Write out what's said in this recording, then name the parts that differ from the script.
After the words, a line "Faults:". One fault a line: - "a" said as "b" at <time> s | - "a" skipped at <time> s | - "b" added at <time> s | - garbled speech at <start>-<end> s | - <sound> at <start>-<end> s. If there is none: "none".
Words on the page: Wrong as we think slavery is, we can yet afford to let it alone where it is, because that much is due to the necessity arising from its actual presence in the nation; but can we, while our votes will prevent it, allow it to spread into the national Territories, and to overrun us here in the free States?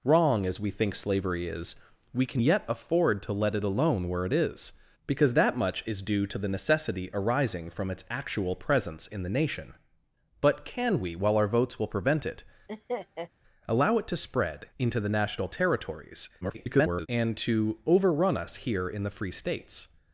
Wrong as we think slavery is, we can yet afford to let it alone where it is, because that much is due to the necessity arising from its actual presence in the nation; but can we, while our votes will prevent it, allow it to spread into the national Territories, [garbled] and to overrun us here in the free States?
Faults:
- laugh at 12.7-13.3 s
- garbled speech at 16.4-17.1 s